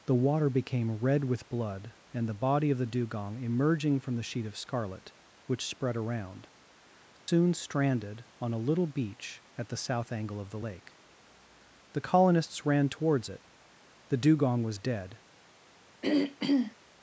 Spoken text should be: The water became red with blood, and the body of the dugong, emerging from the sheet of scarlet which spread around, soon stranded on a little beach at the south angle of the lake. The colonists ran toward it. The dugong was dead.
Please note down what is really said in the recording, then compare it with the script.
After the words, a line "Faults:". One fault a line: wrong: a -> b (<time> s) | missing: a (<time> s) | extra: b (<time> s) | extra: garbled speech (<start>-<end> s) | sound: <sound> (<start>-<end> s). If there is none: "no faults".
The water became red with blood, and the body of the dugong, emerging from the sheet of scarlet which spread around, soon stranded on a little beach at the south angle of the lake. The colonists ran towards it. The dugong was dead.
Faults:
sound: dropout (7.2-7.3 s)
wrong: toward -> towards (12.9 s)
sound: throat clearing (16.0-16.8 s)